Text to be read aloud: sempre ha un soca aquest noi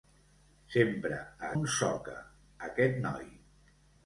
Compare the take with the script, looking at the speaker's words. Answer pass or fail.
pass